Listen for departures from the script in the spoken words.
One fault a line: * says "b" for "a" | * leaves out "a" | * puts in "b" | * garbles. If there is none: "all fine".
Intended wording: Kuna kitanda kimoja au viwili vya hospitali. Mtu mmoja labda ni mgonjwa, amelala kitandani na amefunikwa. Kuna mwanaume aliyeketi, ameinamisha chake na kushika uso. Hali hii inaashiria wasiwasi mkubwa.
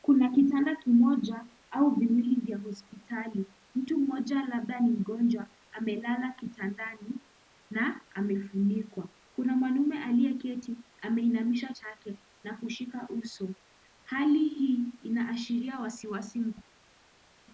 all fine